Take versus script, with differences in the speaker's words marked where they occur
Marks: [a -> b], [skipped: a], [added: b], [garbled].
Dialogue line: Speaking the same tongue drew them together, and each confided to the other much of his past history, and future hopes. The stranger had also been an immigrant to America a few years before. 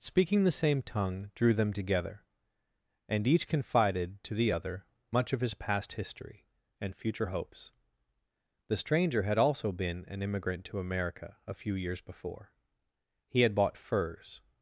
Speaking the same tongue drew them together, and each confided to the other much of his past history, and future hopes. The stranger had also been an immigrant to America a few years before. [added: He had bought furs]